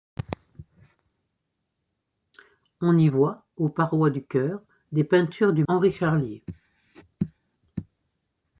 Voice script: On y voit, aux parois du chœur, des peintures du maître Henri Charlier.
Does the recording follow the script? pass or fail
fail